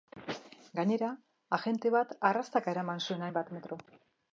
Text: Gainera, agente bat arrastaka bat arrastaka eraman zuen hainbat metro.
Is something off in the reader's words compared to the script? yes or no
yes